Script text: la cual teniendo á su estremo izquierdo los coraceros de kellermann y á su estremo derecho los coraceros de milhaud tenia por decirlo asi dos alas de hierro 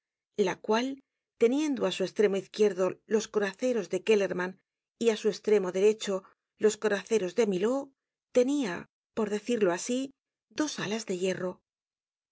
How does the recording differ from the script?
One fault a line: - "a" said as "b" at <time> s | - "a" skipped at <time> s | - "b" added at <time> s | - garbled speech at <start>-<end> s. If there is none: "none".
none